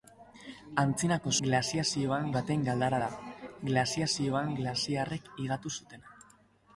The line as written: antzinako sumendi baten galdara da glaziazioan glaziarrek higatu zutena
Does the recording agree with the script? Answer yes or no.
no